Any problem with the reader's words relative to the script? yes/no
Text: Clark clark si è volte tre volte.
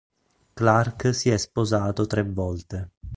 yes